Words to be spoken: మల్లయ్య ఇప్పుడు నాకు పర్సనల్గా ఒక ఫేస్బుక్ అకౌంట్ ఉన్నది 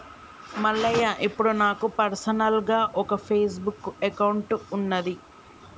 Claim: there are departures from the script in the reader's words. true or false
false